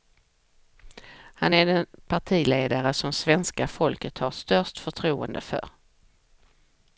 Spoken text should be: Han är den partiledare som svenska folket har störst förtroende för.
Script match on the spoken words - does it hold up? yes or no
yes